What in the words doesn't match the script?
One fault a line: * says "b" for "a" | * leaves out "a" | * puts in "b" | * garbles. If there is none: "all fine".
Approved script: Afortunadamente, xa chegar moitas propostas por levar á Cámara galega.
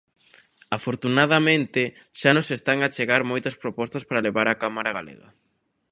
* puts in "nos están a"
* says "para" for "por"